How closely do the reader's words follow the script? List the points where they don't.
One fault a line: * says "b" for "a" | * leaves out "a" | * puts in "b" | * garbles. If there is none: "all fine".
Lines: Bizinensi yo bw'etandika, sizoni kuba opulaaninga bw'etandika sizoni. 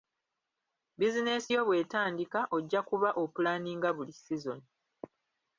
* says "ojja" for "sizoni"
* says "buli" for "bw'etandika"